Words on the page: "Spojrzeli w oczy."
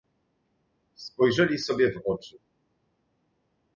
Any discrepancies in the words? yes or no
yes